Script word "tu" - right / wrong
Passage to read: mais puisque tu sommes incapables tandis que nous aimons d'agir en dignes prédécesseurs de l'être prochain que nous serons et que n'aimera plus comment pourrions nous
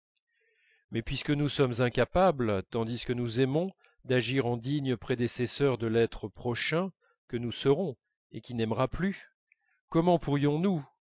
wrong